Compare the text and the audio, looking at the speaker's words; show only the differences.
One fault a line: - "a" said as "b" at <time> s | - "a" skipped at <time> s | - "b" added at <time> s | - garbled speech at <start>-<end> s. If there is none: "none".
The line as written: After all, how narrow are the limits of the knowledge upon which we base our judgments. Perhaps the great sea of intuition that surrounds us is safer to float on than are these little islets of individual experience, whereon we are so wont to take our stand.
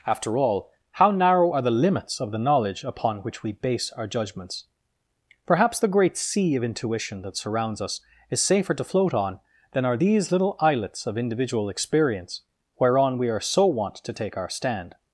none